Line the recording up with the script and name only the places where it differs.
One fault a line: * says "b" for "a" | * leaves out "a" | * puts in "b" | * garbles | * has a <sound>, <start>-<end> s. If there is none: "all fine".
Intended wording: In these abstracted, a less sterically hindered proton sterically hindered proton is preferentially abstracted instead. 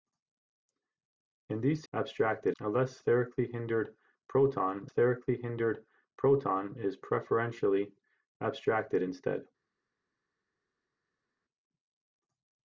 all fine